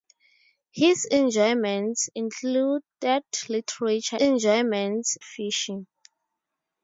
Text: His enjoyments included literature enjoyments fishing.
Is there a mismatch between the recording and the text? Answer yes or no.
no